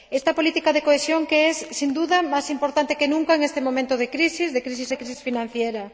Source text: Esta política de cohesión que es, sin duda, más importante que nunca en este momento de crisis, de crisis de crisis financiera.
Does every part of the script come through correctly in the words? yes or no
yes